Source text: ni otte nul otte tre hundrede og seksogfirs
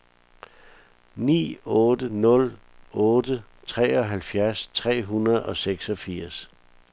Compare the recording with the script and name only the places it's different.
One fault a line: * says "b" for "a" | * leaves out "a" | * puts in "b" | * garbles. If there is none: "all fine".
* puts in "treoghalvfjerds"